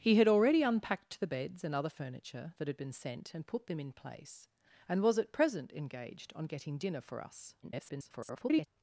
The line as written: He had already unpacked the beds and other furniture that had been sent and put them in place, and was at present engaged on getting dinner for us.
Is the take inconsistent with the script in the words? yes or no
yes